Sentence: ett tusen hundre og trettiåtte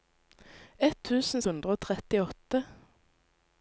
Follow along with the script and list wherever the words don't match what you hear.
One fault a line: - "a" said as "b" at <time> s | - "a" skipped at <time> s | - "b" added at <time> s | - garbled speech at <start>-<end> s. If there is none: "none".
none